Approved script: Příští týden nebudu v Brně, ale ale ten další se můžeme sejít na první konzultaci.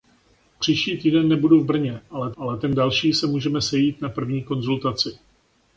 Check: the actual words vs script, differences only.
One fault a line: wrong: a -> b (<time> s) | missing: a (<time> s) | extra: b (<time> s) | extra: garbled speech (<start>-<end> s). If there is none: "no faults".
no faults